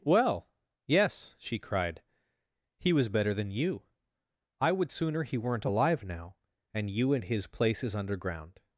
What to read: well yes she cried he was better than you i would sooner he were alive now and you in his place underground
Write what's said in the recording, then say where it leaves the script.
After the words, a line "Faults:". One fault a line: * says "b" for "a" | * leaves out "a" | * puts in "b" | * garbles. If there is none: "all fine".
well yes she cried he was better than you i would sooner he weren't alive now and you in his places underground
Faults:
* says "weren't" for "were"
* says "places" for "place"